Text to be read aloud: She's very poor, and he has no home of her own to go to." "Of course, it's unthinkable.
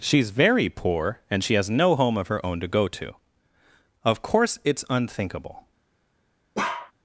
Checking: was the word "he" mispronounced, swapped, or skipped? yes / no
yes